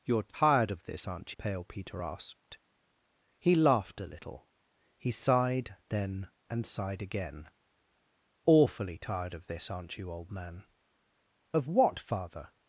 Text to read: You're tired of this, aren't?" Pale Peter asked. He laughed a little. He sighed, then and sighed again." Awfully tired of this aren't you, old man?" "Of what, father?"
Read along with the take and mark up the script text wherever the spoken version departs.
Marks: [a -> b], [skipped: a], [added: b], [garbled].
You're tired of this, aren't?" Pale Peter asked. He laughed a little. He sighed, then and sighed again." Awfully tired of this aren't you, old man?" "Of what, father?"